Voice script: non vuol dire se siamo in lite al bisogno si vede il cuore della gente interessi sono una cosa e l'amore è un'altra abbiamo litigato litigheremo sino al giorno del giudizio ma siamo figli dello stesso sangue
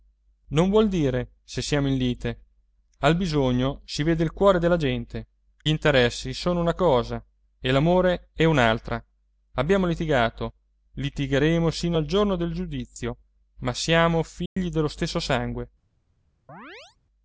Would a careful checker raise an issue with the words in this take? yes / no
no